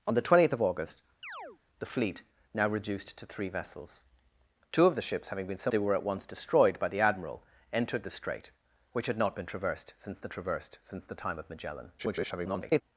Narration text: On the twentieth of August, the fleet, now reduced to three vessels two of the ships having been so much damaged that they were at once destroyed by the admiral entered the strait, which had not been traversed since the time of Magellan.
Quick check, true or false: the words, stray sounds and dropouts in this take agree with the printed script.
false